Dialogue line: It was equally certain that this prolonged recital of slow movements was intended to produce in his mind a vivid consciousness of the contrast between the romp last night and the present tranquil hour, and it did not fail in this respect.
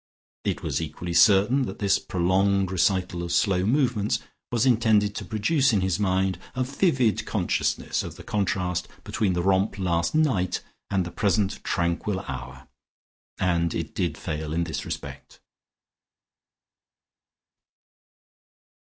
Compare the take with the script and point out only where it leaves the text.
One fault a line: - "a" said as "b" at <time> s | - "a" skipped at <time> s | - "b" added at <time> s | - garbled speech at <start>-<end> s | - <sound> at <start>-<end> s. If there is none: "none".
- "not" skipped at 14.2 s